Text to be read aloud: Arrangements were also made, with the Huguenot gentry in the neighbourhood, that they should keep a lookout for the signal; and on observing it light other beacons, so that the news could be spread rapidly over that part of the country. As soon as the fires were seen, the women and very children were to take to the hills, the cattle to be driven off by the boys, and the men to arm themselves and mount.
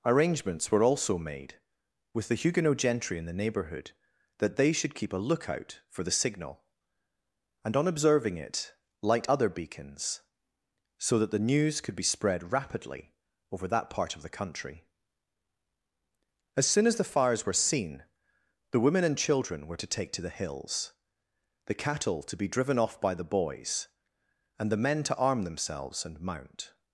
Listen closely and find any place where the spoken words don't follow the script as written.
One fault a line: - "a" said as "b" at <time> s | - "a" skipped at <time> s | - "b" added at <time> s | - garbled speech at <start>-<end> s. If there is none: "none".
- "very" skipped at 19.2 s